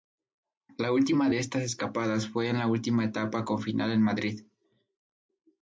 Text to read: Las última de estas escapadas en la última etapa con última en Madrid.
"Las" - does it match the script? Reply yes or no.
no